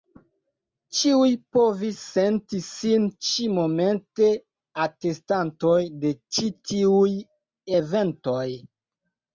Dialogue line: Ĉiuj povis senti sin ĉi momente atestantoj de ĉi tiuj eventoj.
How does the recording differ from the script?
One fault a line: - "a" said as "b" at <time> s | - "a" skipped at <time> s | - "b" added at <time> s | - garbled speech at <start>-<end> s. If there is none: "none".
none